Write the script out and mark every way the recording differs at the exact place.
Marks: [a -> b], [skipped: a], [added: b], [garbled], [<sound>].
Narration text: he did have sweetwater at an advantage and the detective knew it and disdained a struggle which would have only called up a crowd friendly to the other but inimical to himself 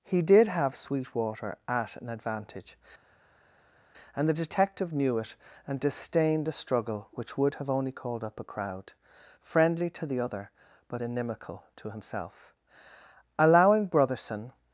he did have sweetwater at an advantage and the detective knew it and disdained a struggle which would have only called up a crowd friendly to the other but inimical to himself [added: allowing brotherson]